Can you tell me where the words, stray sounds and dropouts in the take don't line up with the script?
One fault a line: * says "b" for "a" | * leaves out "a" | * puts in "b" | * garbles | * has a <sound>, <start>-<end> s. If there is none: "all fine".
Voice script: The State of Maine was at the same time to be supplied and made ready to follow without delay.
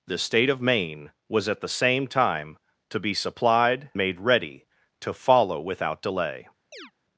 * leaves out "and"
* has a chirp, 6.7-6.9 s